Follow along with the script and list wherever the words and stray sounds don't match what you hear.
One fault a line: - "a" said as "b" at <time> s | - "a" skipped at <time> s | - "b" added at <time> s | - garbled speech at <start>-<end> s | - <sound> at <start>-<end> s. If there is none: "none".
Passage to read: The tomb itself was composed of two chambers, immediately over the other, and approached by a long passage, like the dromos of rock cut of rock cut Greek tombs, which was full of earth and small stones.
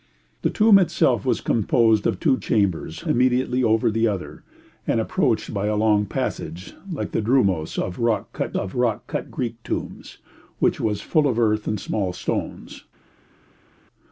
none